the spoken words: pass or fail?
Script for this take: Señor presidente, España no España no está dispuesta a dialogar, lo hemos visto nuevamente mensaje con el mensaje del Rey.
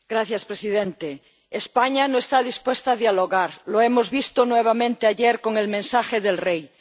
fail